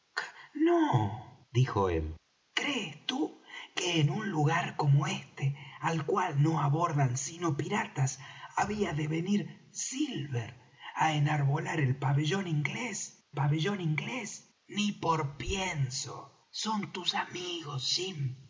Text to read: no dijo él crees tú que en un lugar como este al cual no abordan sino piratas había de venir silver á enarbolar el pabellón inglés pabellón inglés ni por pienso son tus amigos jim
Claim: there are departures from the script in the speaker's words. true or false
false